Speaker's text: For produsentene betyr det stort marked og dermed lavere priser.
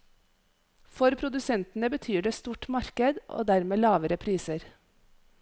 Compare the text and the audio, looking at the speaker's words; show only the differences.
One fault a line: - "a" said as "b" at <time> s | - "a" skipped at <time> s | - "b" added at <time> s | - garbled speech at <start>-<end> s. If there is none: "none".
none